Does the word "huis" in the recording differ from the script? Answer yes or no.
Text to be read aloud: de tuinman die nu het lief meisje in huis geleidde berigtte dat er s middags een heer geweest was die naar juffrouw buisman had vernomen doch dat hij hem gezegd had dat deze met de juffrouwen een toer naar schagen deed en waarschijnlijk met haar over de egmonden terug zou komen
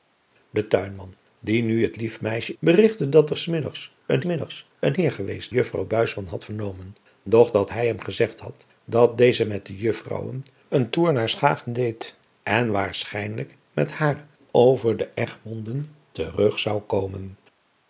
yes